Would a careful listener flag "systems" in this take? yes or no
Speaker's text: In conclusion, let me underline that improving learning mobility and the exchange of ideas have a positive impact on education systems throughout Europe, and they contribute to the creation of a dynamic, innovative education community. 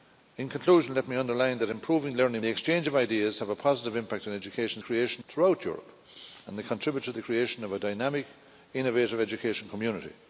yes